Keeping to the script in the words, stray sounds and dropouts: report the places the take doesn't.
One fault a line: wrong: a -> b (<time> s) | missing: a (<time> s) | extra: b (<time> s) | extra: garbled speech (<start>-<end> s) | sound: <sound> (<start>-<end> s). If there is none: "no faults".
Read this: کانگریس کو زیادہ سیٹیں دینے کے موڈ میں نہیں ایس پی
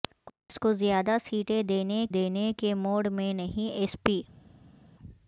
extra: دینے (2.1 s)